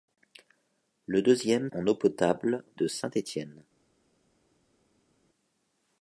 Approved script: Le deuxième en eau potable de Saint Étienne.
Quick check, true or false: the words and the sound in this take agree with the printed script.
true